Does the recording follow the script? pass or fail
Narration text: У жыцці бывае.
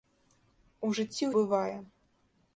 pass